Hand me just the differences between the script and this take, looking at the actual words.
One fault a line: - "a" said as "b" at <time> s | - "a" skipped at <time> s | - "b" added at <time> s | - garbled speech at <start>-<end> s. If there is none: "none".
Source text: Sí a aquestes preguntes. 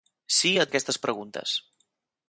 none